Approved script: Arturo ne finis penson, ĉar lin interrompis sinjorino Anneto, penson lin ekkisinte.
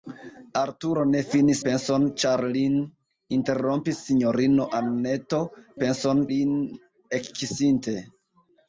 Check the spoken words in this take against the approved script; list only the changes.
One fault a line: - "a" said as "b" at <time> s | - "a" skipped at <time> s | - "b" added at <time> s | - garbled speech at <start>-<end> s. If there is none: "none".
none